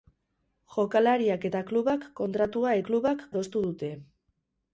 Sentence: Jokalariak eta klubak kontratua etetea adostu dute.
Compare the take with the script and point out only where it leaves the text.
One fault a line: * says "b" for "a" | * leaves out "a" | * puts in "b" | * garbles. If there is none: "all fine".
* says "klubak" for "etetea"